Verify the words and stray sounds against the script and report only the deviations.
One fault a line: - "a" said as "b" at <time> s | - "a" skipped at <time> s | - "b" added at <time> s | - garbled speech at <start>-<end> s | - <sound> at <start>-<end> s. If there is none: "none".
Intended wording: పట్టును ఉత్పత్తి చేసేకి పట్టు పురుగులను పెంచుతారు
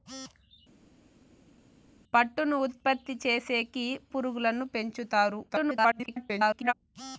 - "పట్టు" skipped at 3.8 s
- garbled speech at 5.5-6.7 s